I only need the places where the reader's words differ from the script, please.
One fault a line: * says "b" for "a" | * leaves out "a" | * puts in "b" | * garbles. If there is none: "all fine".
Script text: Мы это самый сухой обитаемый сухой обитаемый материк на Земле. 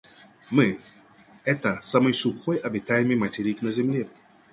* leaves out "сухой обитаемый"